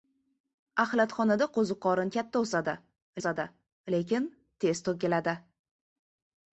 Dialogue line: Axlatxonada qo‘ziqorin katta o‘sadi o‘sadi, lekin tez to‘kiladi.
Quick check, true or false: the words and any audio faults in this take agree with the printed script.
true